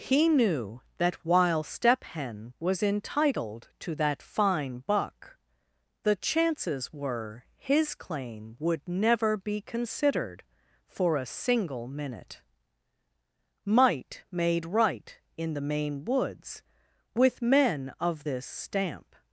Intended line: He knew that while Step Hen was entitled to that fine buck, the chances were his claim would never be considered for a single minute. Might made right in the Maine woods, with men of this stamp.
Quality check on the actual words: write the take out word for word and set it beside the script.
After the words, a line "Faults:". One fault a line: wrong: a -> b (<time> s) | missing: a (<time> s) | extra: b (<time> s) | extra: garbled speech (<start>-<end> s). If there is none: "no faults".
He knew that while Step Hen was entitled to that fine buck, the chances were his claim would never be considered for a single minute. Might made right in the Maine woods, with men of this stamp.
Faults:
no faults